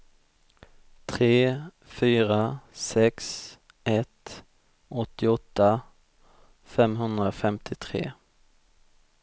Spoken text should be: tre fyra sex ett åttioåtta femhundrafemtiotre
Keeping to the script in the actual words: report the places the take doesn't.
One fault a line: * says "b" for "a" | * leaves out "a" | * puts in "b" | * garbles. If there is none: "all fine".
all fine